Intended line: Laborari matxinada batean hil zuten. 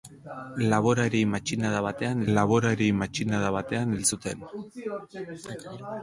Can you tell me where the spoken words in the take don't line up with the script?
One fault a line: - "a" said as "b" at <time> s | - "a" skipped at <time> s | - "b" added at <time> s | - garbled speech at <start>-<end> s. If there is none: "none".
- "laborari matxinada batean" added at 2.4 s